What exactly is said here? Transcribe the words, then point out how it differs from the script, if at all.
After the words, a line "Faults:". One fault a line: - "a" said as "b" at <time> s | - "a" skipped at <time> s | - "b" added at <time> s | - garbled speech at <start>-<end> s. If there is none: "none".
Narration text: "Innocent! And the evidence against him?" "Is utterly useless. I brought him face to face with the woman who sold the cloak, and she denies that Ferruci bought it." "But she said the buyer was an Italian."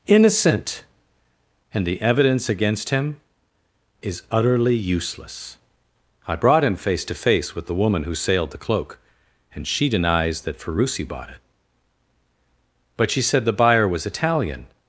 "Innocent! And the evidence against him?" "Is utterly useless. I brought him face to face with the woman who sailed the cloak, and she denies that Ferruci bought it." "But she said the buyer was Italian."
Faults:
- "sold" said as "sailed" at 8.2 s
- "an" skipped at 14.1 s